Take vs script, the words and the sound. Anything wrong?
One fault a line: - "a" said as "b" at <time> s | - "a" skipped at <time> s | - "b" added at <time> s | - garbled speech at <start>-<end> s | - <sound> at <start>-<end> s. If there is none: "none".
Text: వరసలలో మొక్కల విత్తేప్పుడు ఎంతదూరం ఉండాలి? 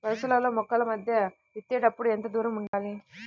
- "మధ్య" added at 0.8 s
- dropout at 2.7-2.7 s